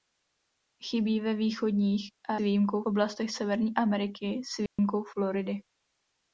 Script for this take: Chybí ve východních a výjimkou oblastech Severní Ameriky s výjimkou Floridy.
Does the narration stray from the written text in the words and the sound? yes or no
yes